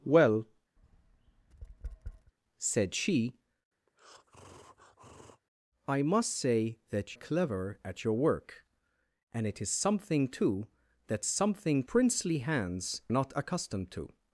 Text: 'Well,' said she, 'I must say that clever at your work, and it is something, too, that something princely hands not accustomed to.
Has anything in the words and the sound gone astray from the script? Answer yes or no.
yes